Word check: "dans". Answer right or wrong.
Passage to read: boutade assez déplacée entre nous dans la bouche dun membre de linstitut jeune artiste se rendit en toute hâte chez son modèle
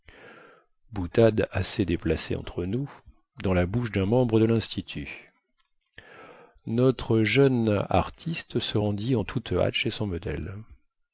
right